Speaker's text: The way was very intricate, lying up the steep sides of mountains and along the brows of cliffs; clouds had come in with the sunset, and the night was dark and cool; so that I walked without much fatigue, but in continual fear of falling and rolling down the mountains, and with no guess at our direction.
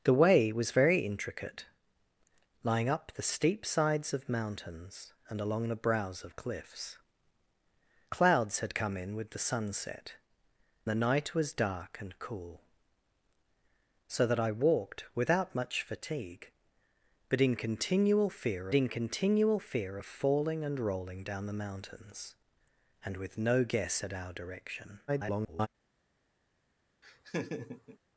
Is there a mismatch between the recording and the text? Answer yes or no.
yes